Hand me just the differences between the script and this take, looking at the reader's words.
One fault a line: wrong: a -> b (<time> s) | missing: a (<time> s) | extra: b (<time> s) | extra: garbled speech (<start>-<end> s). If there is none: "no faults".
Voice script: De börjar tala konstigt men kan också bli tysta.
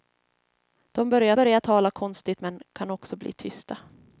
extra: börjar (1.3 s)